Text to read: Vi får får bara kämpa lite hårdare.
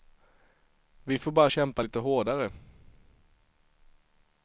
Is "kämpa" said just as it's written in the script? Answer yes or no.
yes